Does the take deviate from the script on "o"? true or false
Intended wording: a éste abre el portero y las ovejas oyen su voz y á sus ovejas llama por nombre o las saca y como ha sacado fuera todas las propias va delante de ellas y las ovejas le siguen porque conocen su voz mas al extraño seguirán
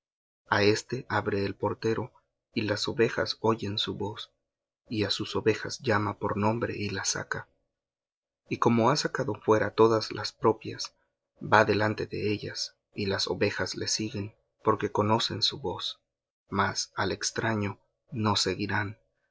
true